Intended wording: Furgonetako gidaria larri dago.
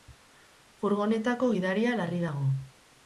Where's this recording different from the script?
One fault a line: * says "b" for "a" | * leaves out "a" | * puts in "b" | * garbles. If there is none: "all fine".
all fine